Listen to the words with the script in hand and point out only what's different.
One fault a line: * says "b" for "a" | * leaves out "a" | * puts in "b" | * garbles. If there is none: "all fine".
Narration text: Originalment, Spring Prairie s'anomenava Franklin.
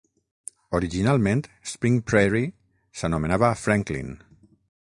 all fine